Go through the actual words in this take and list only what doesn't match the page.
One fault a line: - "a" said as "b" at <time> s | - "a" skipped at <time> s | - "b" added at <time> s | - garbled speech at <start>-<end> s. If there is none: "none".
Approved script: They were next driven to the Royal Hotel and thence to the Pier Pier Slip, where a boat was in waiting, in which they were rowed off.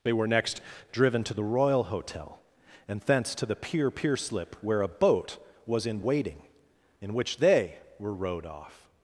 none